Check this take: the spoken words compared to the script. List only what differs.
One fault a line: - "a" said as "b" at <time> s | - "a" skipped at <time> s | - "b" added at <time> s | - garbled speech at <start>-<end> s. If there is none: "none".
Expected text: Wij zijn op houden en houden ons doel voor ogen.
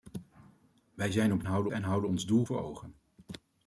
none